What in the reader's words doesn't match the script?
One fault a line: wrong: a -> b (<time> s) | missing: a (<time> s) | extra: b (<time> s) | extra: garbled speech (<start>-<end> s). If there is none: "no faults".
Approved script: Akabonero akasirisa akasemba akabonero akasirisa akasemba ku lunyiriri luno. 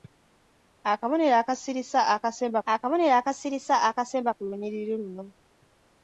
no faults